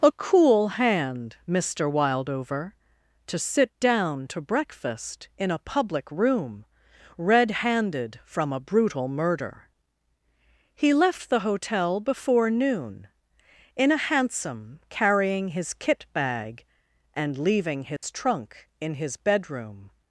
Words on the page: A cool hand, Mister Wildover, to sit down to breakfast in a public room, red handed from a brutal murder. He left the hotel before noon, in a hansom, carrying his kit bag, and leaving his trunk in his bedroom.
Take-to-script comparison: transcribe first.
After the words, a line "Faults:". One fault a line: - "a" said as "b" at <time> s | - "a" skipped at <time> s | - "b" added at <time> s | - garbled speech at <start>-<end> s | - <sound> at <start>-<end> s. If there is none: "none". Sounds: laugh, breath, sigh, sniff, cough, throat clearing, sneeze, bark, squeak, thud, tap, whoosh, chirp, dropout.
A cool hand, Mister Wildover, to sit down to breakfast in a public room, red handed from a brutal murder. He left the hotel before noon, in a hansom, carrying his kit bag, and leaving his trunk in his bedroom.
Faults:
- dropout at 18.0-18.0 s